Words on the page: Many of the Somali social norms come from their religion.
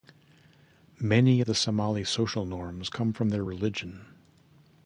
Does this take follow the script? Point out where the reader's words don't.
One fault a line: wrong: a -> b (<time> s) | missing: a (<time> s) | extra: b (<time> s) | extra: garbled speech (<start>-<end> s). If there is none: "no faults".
no faults